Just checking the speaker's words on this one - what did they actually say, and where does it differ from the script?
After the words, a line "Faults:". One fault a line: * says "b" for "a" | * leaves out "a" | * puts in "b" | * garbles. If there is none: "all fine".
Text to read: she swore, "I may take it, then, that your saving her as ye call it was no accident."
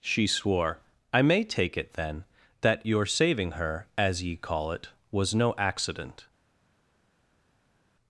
she swore, "I may take it, then, that your saving her as ye call it was no accident."
Faults:
all fine